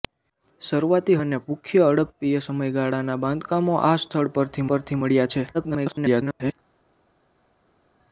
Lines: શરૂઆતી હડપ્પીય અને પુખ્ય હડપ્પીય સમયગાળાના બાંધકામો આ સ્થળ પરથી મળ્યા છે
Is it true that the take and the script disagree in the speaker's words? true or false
true